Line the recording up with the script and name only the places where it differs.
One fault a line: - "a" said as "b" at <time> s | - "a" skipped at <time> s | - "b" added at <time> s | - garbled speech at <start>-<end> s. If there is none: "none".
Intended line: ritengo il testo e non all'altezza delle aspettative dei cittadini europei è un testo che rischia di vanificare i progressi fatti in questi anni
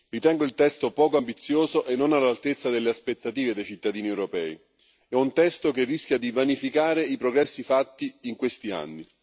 - "poco ambizioso" added at 0.9 s